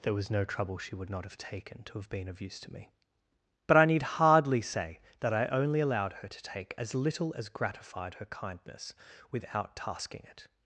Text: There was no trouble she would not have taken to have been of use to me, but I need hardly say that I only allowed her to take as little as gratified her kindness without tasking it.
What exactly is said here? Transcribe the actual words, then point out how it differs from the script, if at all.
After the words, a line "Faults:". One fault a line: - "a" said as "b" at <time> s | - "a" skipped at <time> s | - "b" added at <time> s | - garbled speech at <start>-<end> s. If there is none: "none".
There was no trouble she would not have taken to have been of use to me, but I need hardly say that I only allowed her to take as little as gratified her kindness without tasking it.
Faults:
none